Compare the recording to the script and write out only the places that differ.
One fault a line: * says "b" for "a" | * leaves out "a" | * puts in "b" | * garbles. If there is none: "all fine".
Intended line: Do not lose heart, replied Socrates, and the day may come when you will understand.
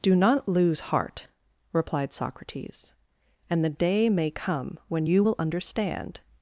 all fine